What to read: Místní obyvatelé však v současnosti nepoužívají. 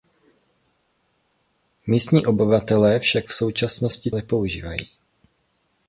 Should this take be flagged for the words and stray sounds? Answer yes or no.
no